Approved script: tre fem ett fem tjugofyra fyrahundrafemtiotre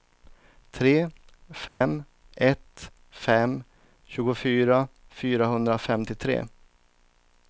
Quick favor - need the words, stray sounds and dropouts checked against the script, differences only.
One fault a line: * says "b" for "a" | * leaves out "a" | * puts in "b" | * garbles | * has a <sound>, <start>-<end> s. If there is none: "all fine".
* has a dropout, 1.7-1.8 s